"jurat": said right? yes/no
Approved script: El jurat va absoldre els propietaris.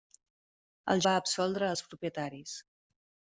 no